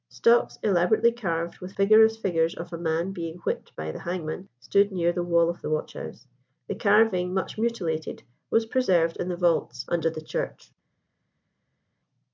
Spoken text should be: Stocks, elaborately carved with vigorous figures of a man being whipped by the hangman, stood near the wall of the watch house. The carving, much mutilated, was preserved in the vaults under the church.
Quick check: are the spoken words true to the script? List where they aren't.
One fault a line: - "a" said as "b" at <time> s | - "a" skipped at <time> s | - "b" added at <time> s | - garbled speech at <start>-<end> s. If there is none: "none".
none